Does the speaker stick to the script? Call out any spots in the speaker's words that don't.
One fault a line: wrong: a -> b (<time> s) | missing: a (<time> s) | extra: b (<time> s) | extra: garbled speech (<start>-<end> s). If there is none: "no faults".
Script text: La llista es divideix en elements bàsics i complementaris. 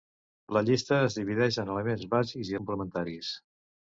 no faults